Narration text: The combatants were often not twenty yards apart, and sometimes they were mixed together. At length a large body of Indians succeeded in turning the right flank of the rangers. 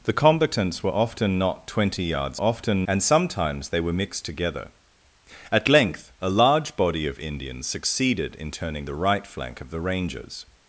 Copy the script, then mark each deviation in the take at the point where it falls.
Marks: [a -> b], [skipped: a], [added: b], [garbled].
The combatants were often not twenty yards [apart, -> often] and sometimes they were mixed together. At length a large body of Indians succeeded in turning the right flank of the rangers.